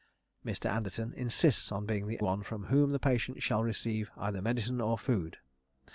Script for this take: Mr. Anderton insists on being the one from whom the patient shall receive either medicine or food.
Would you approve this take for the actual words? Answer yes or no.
yes